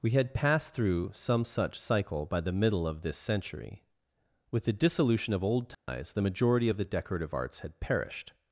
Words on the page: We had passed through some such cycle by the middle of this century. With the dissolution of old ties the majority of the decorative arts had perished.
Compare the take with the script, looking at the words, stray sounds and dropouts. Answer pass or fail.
fail